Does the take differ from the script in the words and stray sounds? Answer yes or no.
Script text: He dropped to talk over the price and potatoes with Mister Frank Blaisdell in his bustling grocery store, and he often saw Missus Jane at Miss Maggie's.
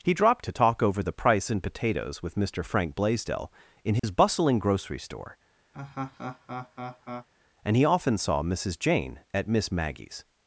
yes